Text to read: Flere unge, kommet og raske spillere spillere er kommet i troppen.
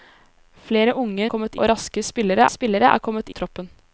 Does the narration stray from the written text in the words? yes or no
no